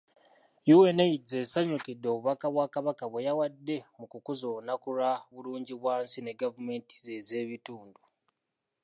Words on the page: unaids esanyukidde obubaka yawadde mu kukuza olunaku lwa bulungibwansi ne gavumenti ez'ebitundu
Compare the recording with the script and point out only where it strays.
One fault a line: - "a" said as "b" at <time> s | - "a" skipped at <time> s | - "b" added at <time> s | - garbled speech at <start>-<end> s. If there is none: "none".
- "bwa kabaka bwe" added at 2.5 s